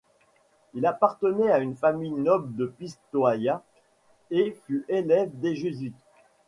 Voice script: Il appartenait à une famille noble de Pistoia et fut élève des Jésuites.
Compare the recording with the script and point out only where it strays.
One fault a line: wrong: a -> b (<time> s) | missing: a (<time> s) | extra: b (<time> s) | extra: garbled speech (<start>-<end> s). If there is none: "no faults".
no faults